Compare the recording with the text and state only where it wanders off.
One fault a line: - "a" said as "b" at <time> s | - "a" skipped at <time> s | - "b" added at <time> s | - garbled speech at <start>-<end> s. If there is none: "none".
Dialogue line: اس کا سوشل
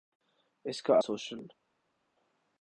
none